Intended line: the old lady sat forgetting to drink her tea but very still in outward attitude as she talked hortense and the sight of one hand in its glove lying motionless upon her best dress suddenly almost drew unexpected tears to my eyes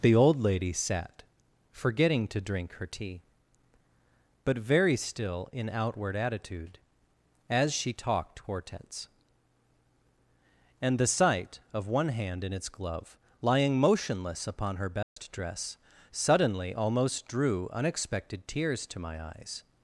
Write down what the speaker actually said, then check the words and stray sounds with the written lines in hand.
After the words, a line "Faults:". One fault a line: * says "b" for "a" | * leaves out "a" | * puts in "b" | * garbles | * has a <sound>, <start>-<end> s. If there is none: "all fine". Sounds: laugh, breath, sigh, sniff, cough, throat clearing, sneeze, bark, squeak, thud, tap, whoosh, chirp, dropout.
the old lady sat forgetting to drink her tea but very still in outward attitude as she talked hortense and the sight of one hand in its glove lying motionless upon her best dress suddenly almost drew unexpected tears to my eyes
Faults:
* has a dropout, 15.0-15.2 s